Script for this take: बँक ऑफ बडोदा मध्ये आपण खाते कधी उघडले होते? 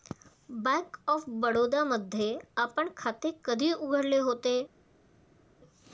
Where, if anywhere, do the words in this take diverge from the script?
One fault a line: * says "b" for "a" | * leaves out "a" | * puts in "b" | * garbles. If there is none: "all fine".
all fine